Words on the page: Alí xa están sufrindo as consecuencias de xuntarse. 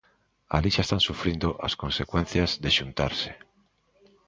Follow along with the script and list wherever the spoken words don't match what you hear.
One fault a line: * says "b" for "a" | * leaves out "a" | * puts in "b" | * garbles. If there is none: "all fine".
all fine